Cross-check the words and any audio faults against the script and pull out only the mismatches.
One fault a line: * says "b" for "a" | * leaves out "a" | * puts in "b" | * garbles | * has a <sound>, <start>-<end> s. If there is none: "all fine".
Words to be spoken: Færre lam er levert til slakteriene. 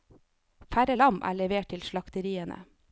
all fine